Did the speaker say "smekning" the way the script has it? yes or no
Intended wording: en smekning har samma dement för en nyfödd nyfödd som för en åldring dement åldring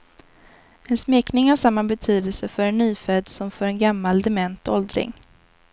yes